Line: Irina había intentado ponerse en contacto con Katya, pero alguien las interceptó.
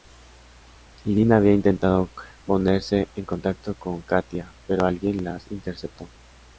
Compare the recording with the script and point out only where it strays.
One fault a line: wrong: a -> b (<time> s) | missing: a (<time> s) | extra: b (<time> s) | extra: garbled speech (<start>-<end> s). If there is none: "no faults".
no faults